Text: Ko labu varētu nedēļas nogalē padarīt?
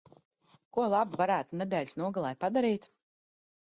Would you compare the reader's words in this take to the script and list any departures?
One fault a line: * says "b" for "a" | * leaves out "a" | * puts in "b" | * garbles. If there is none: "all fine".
all fine